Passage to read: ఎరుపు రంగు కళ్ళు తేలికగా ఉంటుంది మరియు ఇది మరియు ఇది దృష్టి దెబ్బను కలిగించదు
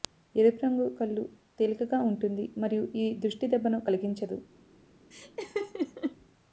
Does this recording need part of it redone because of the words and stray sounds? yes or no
yes